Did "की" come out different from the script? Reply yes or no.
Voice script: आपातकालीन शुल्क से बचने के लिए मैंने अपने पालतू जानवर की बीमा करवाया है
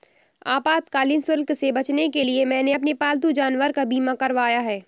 yes